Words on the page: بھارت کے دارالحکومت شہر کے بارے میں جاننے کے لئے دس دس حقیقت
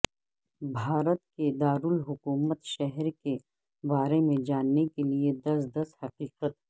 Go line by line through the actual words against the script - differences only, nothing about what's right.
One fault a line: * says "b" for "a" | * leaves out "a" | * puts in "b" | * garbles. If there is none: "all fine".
all fine